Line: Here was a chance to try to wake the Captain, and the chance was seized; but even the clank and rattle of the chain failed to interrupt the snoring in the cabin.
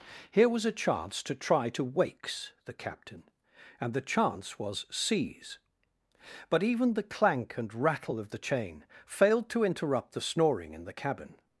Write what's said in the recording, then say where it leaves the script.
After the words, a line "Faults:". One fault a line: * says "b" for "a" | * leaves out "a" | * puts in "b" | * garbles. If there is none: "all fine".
Here was a chance to try to wakes the Captain, and the chance was seize; but even the clank and rattle of the chain failed to interrupt the snoring in the cabin.
Faults:
* says "wakes" for "wake"
* says "seize" for "seized"